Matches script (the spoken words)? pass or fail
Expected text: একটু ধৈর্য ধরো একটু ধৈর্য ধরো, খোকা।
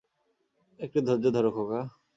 fail